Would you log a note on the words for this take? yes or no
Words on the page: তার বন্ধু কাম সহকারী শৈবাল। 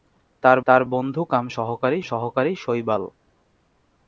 yes